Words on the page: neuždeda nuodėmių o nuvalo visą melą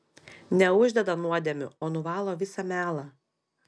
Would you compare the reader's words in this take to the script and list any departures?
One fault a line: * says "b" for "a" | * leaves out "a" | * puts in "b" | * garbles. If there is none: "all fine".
all fine